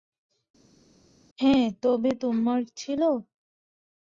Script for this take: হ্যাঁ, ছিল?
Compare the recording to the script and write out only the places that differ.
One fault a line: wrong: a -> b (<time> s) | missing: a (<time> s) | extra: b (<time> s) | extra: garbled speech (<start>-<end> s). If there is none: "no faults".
extra: তবে তোমার (1.8 s)